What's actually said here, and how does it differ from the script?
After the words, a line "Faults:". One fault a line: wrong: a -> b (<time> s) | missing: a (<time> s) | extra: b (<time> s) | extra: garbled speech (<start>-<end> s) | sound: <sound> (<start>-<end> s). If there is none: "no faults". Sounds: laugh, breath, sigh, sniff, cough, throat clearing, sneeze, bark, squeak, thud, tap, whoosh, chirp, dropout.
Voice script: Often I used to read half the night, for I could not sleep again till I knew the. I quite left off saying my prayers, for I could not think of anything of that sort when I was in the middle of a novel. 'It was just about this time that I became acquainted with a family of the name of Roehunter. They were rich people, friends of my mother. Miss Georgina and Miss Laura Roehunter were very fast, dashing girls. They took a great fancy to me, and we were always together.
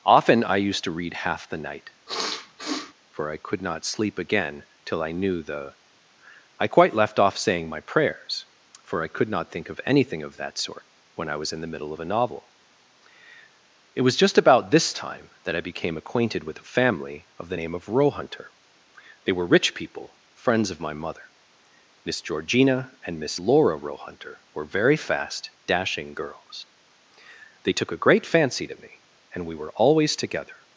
Often I used to read half the night, for I could not sleep again till I knew the. I quite left off saying my prayers, for I could not think of anything of that sort when I was in the middle of a novel. 'It was just about this time that I became acquainted with a family of the name of Roehunter. They were rich people, friends of my mother. Miss Georgina and Miss Laura Roehunter were very fast, dashing girls. They took a great fancy to me, and we were always together.
Faults:
sound: sniff (2.1-2.9 s)